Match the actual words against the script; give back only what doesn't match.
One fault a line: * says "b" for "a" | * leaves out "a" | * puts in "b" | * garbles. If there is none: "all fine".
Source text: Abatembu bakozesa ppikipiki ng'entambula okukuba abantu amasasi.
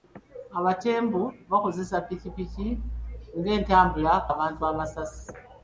* leaves out "okukuba"